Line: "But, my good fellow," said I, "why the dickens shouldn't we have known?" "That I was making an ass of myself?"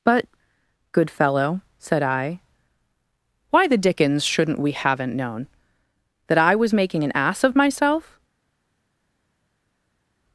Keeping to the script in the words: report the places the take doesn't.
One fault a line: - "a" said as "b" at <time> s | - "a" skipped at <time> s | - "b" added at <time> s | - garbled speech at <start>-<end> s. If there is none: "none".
- "my" skipped at 0.2 s
- "have" said as "haven't" at 4.7 s